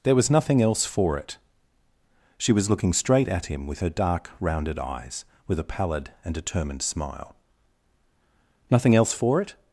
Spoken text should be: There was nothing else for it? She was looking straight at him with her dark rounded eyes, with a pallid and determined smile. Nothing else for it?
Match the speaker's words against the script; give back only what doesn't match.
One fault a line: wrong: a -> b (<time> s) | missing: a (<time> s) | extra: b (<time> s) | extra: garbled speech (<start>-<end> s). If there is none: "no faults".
no faults